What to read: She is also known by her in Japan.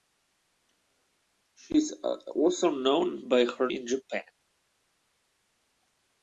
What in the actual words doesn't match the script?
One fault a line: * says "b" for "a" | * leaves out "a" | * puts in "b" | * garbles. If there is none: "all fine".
all fine